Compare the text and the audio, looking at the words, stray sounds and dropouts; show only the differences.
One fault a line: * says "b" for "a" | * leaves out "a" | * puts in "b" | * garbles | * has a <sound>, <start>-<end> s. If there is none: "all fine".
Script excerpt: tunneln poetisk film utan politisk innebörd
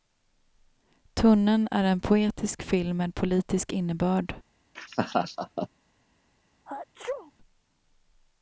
* puts in "är en"
* says "med" for "utan"
* has a laugh, 4.7-5.7 s
* has a sneeze, 6.6-7.3 s